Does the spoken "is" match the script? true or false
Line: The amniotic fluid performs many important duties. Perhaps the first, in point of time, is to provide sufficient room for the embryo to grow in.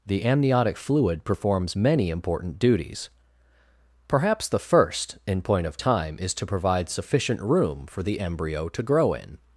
true